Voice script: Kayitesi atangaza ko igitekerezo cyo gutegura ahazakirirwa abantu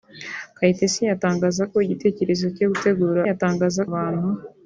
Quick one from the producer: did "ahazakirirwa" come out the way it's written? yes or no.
no